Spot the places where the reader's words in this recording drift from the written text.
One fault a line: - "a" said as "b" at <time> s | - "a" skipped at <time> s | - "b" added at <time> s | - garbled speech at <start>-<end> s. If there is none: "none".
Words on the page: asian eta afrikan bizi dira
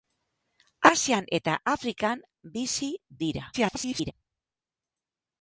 - garbled speech at 3.5-4.1 s